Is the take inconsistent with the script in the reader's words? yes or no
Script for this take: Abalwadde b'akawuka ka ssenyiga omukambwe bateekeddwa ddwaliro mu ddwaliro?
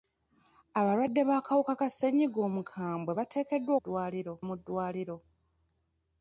no